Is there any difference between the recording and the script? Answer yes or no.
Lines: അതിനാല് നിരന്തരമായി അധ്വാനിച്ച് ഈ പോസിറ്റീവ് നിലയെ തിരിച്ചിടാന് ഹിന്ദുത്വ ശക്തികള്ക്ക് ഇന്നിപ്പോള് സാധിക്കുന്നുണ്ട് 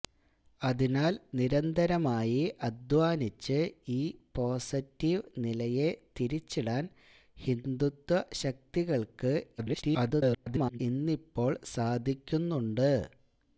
yes